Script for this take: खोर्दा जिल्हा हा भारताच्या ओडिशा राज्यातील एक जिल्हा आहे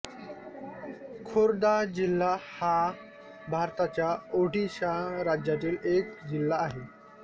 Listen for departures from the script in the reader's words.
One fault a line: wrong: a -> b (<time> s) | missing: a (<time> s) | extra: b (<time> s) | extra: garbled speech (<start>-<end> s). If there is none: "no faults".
no faults